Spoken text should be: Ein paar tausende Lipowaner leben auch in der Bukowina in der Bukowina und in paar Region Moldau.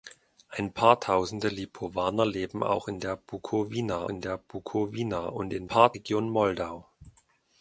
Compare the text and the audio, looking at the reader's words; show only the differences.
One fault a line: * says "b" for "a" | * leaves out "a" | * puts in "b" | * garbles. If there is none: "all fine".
all fine